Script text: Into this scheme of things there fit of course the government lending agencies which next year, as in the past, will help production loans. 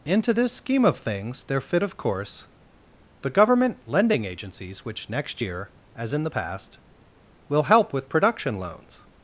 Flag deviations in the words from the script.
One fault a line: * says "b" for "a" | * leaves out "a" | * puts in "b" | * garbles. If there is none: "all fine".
* puts in "with"